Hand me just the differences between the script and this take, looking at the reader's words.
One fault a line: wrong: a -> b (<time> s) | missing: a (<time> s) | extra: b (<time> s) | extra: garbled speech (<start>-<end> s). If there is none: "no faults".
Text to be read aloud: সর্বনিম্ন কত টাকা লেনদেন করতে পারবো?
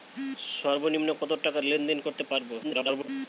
extra: garbled speech (2.6-3.1 s)